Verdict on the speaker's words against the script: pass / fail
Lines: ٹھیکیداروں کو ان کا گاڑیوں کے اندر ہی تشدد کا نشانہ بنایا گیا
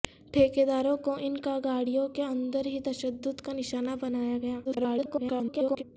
fail